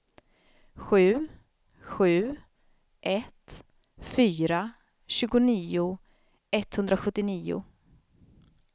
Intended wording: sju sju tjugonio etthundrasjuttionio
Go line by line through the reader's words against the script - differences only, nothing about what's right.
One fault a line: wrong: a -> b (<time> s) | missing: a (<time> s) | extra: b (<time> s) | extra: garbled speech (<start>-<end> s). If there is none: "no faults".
extra: ett fyra (3.0 s)